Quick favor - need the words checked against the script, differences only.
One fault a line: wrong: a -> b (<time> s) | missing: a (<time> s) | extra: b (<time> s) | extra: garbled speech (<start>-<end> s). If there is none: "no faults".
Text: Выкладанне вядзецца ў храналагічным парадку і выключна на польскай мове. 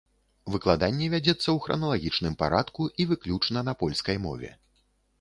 no faults